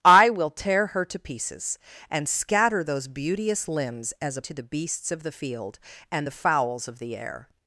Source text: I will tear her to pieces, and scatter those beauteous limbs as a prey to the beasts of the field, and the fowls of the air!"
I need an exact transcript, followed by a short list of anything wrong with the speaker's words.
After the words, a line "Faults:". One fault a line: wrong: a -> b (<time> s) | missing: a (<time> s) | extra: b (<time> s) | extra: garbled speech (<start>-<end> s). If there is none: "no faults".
I will tear her to pieces, and scatter those beauteous limbs as a to the beasts of the field, and the fowls of the air!"
Faults:
missing: prey (4.4 s)